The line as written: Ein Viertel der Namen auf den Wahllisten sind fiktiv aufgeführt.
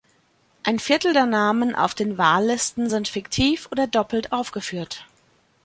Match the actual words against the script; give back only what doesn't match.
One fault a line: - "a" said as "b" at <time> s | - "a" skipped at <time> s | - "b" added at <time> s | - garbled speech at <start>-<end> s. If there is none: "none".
- "oder doppelt" added at 3.7 s